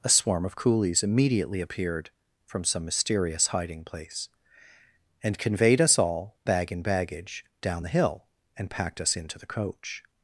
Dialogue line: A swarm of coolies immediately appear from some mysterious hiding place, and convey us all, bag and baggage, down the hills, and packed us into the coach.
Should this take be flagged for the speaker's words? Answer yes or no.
yes